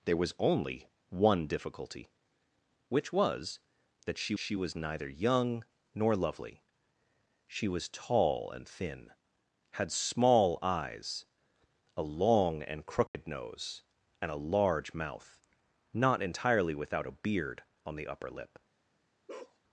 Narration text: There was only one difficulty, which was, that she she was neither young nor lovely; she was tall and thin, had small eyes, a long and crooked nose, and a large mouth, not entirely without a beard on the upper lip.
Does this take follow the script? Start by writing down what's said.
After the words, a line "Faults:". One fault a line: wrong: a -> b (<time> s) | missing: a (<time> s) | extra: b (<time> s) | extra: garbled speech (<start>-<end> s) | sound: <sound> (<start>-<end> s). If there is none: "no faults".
There was only one difficulty, which was, that she she was neither young nor lovely; she was tall and thin, had small eyes, a long and crooked nose, and a large mouth, not entirely without a beard on the upper lip.
Faults:
sound: dropout (13.1-13.1 s)
sound: bark (19.3-19.6 s)